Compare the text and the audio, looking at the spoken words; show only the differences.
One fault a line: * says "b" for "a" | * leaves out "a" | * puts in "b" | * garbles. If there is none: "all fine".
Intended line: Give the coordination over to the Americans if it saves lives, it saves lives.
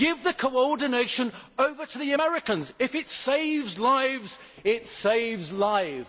all fine